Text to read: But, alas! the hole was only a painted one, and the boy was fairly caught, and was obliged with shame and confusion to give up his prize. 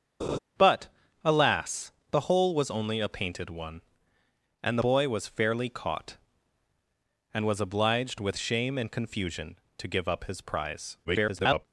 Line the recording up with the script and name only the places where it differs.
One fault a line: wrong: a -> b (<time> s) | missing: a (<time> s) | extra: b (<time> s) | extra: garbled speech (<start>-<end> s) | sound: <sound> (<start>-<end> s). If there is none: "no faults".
sound: laugh (0.2-0.4 s)
missing: the (4.8 s)
extra: garbled speech (11.0-11.7 s)